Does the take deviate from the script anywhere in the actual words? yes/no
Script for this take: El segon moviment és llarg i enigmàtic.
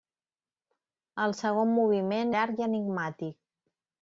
yes